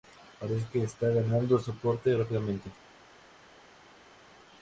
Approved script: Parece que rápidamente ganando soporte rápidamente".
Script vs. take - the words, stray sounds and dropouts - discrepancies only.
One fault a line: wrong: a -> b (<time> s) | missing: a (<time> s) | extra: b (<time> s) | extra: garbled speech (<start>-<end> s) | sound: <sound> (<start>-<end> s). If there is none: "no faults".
wrong: rápidamente -> está (0.8 s)